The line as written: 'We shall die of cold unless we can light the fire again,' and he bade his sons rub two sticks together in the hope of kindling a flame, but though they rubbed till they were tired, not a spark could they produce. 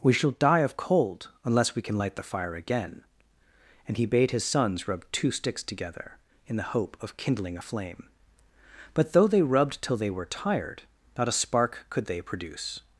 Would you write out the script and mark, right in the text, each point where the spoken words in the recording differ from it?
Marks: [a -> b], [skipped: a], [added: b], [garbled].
'We shall die of cold unless we can light the fire again,' and he bade his sons rub two sticks together in the hope of kindling a flame, but though they rubbed till they were tired, not a spark could they produce.